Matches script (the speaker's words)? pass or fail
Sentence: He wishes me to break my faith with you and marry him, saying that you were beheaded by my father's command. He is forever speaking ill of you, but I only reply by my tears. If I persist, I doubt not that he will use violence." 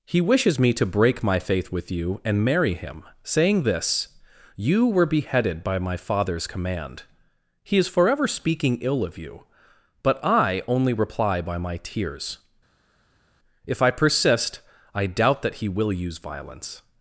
fail